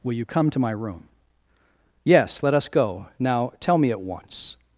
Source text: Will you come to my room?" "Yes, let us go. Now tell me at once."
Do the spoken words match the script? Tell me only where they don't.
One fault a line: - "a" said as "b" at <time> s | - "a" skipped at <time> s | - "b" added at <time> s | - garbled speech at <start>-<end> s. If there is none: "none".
none